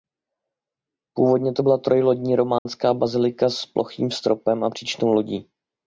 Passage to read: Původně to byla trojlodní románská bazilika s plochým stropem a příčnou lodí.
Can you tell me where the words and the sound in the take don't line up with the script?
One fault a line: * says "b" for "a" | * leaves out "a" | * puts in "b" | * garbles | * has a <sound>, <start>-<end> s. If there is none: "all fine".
* has a dropout, 2.6-2.7 s